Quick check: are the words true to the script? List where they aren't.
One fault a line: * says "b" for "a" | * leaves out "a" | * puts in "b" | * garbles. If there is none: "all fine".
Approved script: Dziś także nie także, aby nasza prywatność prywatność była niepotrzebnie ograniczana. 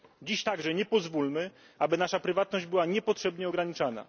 * says "pozwólmy" for "także"
* leaves out "prywatność"